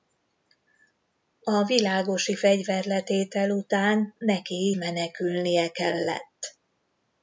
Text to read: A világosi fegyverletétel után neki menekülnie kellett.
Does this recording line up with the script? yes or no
yes